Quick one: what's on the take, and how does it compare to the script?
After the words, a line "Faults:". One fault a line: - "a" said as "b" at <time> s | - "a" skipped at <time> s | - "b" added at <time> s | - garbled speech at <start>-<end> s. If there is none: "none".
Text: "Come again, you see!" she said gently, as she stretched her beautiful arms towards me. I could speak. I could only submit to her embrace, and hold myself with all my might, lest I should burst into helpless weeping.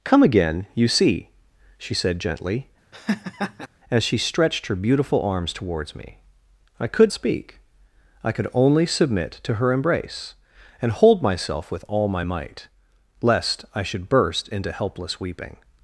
"Come again, you see!" she said gently, as she stretched her beautiful arms towards me. I could speak. I could only submit to her embrace, and hold myself with all my might, lest I should burst into helpless weeping.
Faults:
none